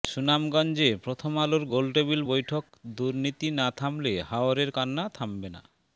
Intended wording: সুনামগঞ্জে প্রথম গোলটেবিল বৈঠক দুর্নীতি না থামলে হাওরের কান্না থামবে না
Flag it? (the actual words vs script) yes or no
yes